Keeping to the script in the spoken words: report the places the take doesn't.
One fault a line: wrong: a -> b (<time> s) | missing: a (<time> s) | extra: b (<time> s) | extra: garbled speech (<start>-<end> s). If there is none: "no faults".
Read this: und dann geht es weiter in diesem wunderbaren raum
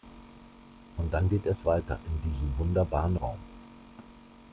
no faults